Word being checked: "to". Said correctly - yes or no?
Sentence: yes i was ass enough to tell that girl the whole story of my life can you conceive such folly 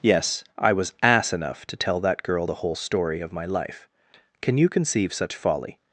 yes